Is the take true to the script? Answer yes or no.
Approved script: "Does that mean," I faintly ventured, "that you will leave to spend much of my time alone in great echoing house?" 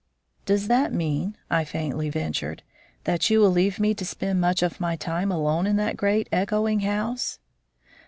no